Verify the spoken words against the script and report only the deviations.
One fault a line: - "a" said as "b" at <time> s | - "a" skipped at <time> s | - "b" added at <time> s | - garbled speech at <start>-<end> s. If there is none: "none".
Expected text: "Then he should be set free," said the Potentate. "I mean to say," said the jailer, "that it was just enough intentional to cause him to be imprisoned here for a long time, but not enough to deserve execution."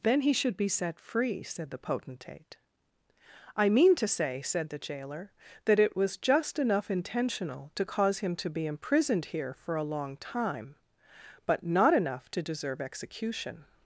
none